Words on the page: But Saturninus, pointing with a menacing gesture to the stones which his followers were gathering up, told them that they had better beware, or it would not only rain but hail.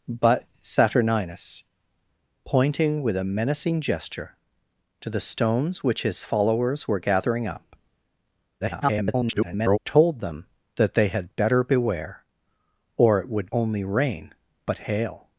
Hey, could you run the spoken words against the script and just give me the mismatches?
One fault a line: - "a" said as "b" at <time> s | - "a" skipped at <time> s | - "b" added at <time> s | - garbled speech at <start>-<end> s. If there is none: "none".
- garbled speech at 8.6-9.8 s
- "not" skipped at 13.5 s